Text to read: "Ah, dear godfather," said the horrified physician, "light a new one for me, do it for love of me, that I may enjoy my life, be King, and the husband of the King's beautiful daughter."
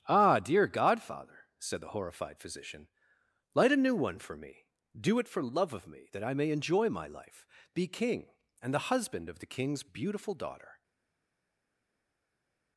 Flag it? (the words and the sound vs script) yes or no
no